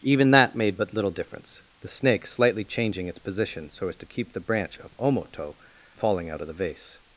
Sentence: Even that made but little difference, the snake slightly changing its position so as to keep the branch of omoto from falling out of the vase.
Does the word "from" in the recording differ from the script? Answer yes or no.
yes